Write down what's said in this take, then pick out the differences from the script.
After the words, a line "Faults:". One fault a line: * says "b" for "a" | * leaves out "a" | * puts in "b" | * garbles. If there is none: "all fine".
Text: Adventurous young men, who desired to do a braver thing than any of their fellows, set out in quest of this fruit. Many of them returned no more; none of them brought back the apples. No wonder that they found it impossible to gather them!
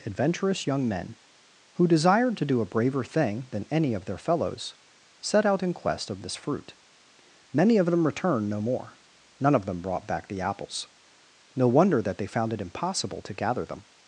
Adventurous young men, who desired to do a braver thing than any of their fellows, set out in quest of this fruit. Many of them returned no more; none of them brought back the apples. No wonder that they found it impossible to gather them!
Faults:
all fine